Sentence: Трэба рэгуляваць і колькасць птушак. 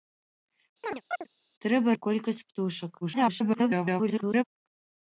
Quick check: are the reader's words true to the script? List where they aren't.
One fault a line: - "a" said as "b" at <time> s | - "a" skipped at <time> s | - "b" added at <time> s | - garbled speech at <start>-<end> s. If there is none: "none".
- "рэгуляваць" skipped at 2.0 s
- garbled speech at 3.0-4.4 s